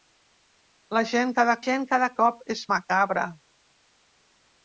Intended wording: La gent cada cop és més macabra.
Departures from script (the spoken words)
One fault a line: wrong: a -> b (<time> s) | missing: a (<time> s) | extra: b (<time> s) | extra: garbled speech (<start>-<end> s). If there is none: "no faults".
extra: gent cada (1.6 s)
missing: més (2.6 s)